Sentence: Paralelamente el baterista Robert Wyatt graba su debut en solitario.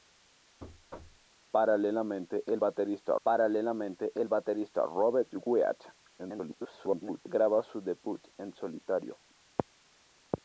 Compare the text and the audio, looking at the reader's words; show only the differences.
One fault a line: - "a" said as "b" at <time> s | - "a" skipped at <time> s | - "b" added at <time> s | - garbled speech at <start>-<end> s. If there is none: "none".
- "paralelamente el baterista" added at 3.2 s
- garbled speech at 6.2-7.2 s